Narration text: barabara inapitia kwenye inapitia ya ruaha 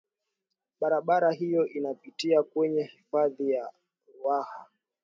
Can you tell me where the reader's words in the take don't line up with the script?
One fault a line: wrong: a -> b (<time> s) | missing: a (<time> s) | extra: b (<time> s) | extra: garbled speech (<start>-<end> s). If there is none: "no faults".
extra: hiyo (1.3 s)
wrong: inapitia -> hifadhi (2.8 s)